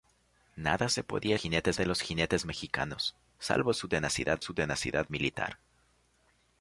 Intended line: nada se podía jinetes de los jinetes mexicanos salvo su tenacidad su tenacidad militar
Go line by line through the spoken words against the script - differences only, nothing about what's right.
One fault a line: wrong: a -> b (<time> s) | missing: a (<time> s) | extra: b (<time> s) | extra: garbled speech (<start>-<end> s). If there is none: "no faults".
no faults